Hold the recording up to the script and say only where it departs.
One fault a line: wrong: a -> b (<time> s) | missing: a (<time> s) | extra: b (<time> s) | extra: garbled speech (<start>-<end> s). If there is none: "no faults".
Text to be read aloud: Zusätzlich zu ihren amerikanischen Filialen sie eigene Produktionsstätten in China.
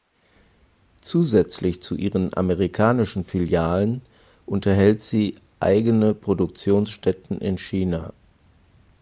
extra: unterhält (4.4 s)